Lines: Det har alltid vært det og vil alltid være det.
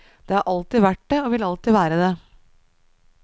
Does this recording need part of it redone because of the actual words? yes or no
no